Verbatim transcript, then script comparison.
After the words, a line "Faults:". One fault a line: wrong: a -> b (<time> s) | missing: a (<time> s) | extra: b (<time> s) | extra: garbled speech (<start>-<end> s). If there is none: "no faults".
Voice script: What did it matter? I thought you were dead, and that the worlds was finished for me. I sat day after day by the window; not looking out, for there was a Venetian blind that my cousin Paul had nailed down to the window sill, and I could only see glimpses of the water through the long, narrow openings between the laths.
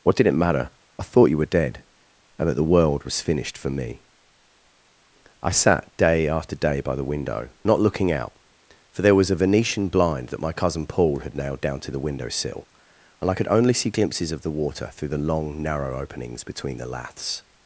What did it matter? I thought you were dead, and that the world was finished for me. I sat day after day by the window; not looking out, for there was a Venetian blind that my cousin Paul had nailed down to the window sill, and I could only see glimpses of the water through the long, narrow openings between the laths.
Faults:
wrong: worlds -> world (2.7 s)